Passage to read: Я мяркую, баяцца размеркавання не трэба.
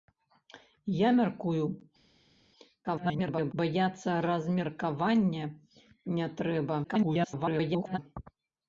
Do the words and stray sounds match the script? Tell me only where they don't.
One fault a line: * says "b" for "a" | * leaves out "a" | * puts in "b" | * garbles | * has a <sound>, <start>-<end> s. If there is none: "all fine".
* garbles
* garbles